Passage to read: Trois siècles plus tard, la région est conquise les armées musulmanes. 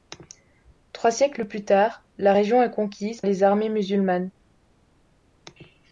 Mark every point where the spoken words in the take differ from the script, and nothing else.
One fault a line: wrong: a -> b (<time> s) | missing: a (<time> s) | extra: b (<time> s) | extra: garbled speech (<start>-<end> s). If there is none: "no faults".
no faults